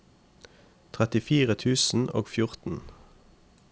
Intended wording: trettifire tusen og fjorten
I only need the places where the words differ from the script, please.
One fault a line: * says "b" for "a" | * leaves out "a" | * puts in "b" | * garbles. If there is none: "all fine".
all fine